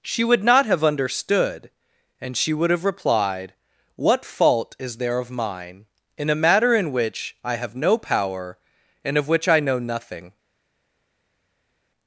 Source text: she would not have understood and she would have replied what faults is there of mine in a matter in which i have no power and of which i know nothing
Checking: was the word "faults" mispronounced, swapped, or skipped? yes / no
yes